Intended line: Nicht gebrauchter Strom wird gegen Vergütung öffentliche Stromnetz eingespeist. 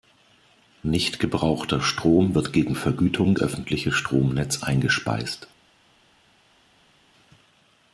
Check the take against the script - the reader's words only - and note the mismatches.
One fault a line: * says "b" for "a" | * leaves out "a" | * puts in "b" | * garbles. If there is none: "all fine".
all fine